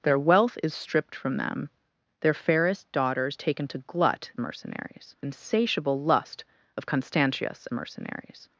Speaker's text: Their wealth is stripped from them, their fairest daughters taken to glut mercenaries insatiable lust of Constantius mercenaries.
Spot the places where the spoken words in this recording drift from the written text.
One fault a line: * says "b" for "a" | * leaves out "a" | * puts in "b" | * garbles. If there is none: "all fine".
all fine